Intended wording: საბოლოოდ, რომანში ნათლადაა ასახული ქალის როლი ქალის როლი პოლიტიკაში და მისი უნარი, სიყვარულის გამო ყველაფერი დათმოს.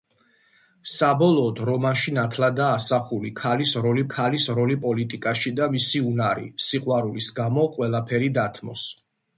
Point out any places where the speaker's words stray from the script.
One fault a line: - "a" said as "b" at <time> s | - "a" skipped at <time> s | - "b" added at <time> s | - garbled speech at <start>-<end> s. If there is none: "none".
none